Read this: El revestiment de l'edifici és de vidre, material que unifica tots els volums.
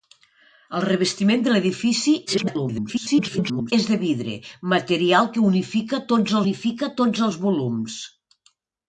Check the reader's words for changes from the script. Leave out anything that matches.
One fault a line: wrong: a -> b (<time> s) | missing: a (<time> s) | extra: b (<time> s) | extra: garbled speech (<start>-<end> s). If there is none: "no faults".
extra: garbled speech (2.3-3.7 s)
extra: unifica tots (6.4 s)